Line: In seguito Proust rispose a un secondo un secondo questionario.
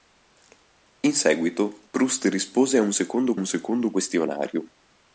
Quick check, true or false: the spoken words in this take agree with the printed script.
true